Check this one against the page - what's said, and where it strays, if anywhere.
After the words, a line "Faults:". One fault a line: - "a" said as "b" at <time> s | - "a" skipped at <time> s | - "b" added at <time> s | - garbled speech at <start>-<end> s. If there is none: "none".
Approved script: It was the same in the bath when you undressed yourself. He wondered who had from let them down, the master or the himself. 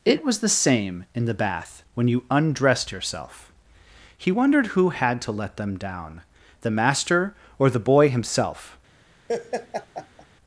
It was the same in the bath when you undressed yourself. He wondered who had to let them down, the master or the boy himself.
Faults:
- "from" said as "to" at 5.2 s
- "boy" added at 7.8 s